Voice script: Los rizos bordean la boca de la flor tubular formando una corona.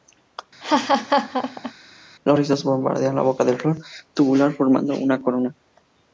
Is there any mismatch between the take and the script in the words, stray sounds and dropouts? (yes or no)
yes